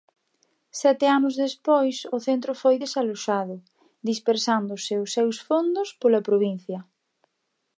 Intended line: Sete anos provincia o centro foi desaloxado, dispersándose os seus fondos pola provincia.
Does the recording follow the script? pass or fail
fail